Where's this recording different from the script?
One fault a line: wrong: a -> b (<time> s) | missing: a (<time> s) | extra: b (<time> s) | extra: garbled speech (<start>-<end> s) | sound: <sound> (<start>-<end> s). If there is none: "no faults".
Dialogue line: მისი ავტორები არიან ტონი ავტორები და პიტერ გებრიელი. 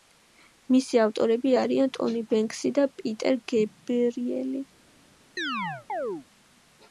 wrong: ავტორები -> ბენქსი (2.3 s)
sound: chirp (5.4-6.3 s)